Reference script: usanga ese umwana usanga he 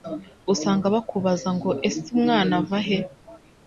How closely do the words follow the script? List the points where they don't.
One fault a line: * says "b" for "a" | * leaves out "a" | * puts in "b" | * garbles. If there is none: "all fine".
* puts in "bakubaza ngo"
* says "ava" for "usanga"